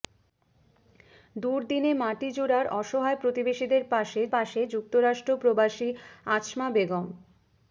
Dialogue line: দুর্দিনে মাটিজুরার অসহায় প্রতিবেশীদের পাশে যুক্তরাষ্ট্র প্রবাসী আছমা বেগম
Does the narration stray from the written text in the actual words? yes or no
yes